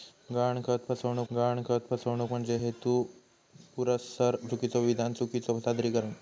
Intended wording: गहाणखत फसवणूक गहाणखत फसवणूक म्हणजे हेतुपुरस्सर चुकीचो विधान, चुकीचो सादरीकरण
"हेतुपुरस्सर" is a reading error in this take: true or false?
false